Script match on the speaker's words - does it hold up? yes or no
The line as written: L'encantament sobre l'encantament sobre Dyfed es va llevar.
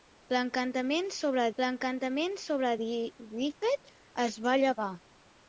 yes